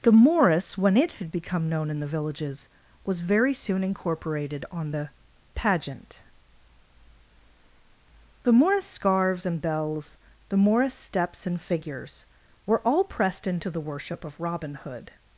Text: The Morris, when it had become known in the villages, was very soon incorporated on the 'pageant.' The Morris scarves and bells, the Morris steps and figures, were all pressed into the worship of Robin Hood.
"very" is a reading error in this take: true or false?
false